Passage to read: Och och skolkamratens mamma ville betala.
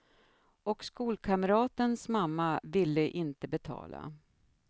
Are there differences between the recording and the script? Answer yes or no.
yes